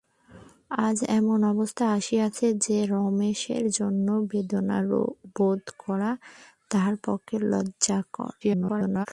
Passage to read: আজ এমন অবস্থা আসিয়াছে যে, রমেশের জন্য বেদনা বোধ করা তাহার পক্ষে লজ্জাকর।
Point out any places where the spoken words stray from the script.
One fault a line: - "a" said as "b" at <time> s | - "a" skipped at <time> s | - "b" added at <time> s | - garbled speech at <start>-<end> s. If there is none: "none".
- garbled speech at 8.4-9.1 s